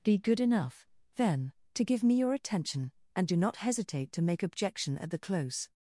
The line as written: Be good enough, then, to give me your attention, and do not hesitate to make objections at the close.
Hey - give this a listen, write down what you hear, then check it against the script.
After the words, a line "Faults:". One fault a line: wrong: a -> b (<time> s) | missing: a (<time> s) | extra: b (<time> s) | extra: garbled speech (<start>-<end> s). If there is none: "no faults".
Be good enough, then, to give me your attention, and do not hesitate to make objection at the close.
Faults:
wrong: objections -> objection (4.4 s)